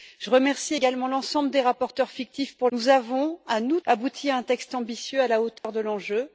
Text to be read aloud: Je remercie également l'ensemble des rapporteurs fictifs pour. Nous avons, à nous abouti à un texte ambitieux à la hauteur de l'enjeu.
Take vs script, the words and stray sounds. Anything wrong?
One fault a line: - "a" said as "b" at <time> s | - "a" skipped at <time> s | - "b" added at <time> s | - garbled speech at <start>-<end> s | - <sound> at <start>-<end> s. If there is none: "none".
- dropout at 5.6-5.6 s